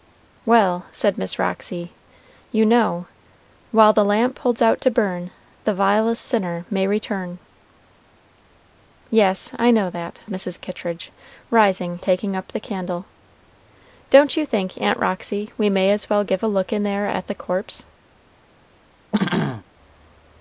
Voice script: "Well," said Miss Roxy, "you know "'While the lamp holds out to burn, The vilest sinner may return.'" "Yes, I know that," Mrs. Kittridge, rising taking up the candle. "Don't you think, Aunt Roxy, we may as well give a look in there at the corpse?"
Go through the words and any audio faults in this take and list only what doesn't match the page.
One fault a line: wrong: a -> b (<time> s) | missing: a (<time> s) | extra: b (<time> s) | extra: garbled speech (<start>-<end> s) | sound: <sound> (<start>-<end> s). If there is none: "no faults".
sound: throat clearing (19.1-19.6 s)